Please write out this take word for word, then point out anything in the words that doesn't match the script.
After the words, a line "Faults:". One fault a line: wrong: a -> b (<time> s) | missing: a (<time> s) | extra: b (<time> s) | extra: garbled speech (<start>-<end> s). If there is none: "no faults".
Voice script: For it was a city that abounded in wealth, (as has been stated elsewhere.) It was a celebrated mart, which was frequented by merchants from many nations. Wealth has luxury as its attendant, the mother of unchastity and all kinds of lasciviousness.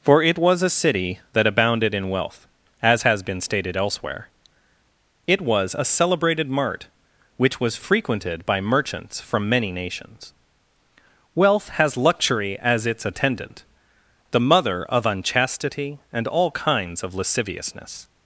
For it was a city that abounded in wealth, (as has been stated elsewhere.) It was a celebrated mart, which was frequented by merchants from many nations. Wealth has luxury as its attendant, the mother of unchastity and all kinds of lasciviousness.
Faults:
no faults